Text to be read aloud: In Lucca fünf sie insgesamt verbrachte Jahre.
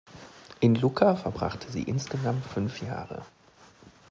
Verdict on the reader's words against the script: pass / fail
fail